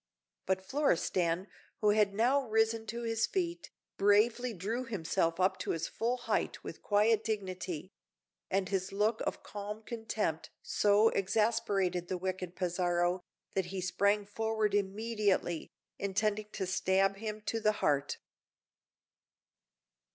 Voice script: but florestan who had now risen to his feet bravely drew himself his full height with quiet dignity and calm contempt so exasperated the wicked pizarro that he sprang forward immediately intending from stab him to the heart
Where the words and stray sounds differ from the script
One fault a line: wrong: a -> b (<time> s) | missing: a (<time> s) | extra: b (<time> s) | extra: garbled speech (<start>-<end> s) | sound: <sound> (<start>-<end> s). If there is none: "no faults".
extra: up to (5.4 s)
extra: his look of (8.7 s)
wrong: from -> to (16.5 s)